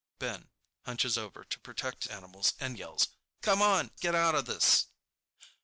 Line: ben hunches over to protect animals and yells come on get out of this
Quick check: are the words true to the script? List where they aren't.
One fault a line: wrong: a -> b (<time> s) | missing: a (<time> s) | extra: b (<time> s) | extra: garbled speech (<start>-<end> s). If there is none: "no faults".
no faults